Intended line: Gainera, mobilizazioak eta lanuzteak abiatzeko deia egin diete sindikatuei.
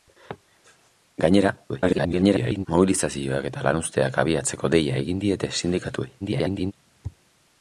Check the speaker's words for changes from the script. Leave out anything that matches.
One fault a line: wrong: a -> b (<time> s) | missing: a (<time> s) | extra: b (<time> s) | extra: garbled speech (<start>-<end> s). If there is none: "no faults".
extra: garbled speech (1.7-2.7 s)
extra: garbled speech (6.2-6.7 s)